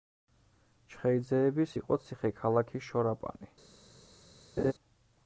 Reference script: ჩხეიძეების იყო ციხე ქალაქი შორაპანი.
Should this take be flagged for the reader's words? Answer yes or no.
no